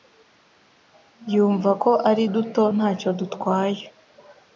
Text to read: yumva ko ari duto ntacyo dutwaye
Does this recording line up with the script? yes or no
yes